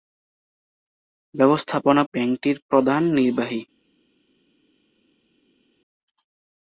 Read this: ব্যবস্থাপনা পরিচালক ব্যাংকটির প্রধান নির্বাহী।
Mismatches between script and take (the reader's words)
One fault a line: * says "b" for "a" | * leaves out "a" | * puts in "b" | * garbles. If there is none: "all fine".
* leaves out "পরিচালক"